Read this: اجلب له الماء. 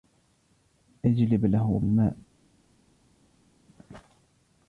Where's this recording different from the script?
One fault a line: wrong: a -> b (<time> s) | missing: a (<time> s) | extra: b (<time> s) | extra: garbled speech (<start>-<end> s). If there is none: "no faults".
no faults